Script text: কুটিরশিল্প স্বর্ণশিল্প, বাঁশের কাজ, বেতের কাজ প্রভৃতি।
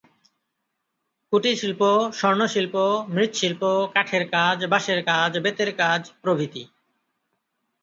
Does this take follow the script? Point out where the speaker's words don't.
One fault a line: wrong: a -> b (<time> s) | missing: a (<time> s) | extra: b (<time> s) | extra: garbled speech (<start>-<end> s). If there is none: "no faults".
extra: মৃৎশিল্প কাঠের কাজ (3.1 s)